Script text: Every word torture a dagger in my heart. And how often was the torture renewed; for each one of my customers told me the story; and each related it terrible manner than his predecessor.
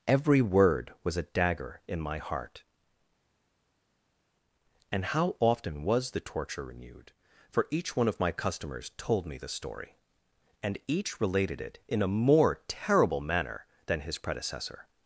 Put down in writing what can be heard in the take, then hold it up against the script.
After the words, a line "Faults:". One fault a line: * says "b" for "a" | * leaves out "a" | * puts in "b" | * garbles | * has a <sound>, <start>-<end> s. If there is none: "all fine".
Every word was a dagger in my heart. And how often was the torture renewed; for each one of my customers told me the story; and each related it in a more terrible manner than his predecessor.
Faults:
* says "was" for "torture"
* puts in "in a more"